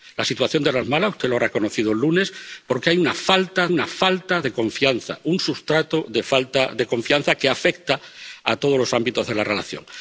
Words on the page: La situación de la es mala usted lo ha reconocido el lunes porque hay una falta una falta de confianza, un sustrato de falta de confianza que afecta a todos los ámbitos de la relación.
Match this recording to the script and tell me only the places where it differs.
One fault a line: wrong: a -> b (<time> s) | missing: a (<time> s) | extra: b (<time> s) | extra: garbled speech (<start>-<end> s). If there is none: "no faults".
no faults